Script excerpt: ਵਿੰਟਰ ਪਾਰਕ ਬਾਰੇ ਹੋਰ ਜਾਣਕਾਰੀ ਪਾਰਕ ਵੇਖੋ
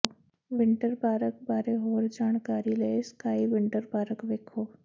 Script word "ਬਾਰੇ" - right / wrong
right